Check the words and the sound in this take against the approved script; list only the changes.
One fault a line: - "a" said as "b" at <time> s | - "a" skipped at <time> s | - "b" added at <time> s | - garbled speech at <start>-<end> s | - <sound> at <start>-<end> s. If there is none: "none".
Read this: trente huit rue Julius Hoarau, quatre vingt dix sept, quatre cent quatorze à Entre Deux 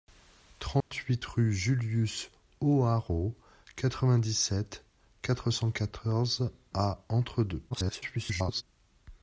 - dropout at 0.8-0.9 s
- garbled speech at 7.7-8.6 s